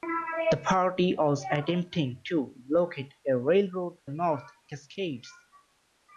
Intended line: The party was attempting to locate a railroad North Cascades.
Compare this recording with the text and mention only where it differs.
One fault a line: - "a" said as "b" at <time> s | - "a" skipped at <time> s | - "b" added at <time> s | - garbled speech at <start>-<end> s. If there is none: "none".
none